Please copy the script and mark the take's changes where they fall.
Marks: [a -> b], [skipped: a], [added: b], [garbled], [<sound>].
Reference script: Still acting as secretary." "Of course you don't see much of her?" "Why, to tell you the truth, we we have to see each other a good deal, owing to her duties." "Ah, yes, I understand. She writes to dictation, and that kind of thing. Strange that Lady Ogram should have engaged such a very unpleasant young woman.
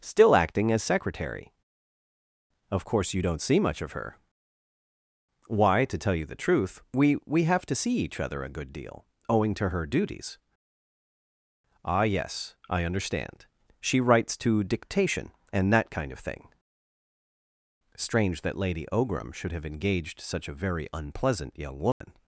Still acting as secretary." "Of course you don't see much of her?" "Why, to tell you the truth, we we have to see each other a good deal, owing to her duties." "Ah, yes, I understand. She writes to dictation, and that kind of thing. Strange that Lady Ogram should have engaged such a very unpleasant young woman. [dropout]